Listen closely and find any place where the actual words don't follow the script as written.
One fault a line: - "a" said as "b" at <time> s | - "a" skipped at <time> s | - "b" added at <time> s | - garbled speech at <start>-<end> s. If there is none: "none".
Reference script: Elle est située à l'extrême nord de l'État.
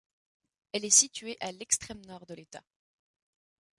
none